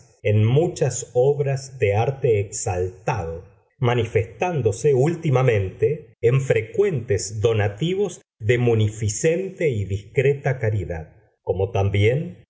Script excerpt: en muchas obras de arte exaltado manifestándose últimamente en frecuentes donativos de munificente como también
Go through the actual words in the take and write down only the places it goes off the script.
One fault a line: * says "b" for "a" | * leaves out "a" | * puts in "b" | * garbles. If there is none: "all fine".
* puts in "y discreta caridad"